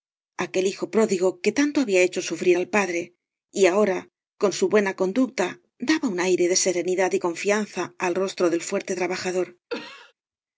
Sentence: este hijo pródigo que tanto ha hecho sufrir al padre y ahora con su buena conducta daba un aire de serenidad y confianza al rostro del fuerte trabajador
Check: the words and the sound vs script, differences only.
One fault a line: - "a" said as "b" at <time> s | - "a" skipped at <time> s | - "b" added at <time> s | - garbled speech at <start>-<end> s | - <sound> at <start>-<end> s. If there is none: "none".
- "este" said as "aquel" at 0.5 s
- "ha" said as "había" at 1.8 s
- cough at 9.7-10.1 s